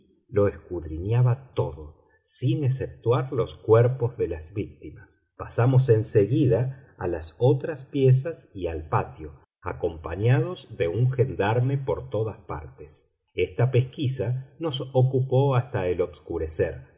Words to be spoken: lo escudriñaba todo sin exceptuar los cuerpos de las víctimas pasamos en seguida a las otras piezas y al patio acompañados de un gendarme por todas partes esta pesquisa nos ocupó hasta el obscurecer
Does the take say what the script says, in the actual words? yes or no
yes